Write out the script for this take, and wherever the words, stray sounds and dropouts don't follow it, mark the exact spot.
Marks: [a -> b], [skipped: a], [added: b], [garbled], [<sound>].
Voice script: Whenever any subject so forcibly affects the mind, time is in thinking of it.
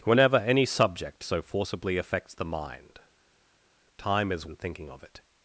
Whenever any subject so forcibly affects the mind, time is in thinking of it.